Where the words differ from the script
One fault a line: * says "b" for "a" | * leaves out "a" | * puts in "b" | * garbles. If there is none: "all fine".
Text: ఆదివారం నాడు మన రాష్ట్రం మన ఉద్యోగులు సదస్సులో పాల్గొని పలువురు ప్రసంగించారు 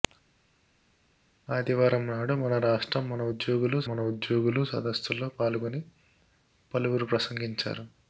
* puts in "మన ఉద్యోగులు"